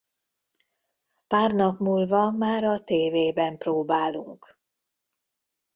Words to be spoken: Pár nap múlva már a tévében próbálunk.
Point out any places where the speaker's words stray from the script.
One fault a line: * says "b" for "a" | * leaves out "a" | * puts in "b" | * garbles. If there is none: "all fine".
all fine